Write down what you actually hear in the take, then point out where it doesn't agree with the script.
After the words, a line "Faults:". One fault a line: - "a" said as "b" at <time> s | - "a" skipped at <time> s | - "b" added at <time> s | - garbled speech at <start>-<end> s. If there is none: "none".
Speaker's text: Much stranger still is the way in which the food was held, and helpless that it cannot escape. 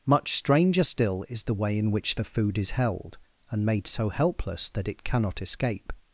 Much stranger still is the way in which the food is held, and made so helpless that it cannot escape.
Faults:
- "was" said as "is" at 2.6 s
- "made so" added at 3.7 s